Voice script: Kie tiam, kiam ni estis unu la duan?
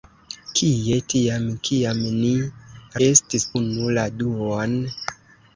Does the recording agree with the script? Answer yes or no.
yes